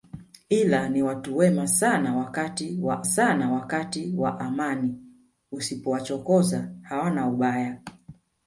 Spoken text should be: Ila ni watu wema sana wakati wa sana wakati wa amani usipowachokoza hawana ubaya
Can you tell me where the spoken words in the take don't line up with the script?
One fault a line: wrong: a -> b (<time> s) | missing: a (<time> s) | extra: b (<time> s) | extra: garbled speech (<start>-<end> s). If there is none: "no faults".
no faults